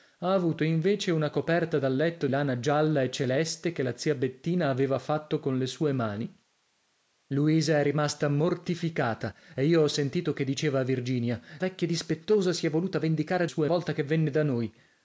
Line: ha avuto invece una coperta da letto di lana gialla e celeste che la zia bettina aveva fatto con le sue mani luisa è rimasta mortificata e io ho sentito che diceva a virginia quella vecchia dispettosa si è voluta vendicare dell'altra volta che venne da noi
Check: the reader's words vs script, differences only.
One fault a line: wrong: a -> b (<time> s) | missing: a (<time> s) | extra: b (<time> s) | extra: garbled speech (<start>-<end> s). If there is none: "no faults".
missing: di (2.3 s)
missing: quella (11.4 s)
wrong: dell'altra -> sue (13.4 s)